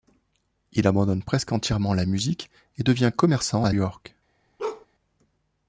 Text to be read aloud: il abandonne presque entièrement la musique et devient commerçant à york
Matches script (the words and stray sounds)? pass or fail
fail